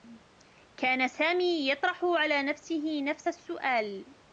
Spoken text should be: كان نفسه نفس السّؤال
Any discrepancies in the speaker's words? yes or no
yes